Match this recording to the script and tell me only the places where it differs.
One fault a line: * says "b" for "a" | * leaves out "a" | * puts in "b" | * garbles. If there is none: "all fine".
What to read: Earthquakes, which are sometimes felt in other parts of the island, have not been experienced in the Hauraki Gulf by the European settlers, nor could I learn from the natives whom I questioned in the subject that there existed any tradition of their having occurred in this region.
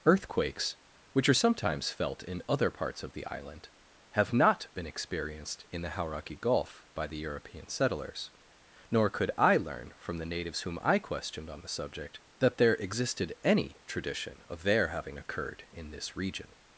* says "on" for "in"